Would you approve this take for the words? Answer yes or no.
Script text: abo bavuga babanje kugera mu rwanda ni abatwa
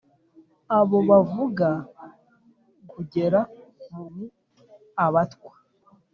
no